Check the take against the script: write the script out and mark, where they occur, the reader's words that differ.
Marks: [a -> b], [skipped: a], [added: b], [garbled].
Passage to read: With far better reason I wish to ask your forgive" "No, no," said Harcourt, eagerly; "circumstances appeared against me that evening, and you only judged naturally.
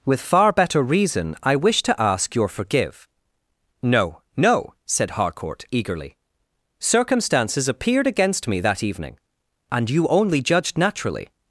With far better reason I wish to ask your forgive" "No, no," said Harcourt, eagerly; "circumstances appeared against me that evening, and you only judged naturally.